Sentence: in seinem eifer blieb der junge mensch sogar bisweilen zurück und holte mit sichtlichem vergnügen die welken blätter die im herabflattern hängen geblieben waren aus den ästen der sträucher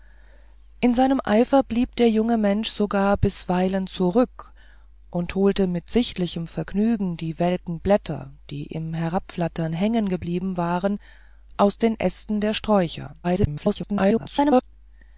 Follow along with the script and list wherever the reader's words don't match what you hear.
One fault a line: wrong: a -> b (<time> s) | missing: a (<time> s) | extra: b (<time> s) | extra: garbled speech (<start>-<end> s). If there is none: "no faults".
extra: garbled speech (13.2-14.6 s)